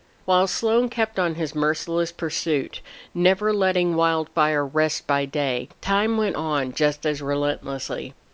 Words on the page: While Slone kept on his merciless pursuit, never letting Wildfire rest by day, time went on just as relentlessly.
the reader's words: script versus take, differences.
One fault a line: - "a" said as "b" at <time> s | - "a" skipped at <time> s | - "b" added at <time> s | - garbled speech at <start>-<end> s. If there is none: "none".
none